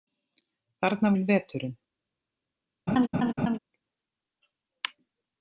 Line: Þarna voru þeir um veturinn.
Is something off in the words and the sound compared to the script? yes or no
yes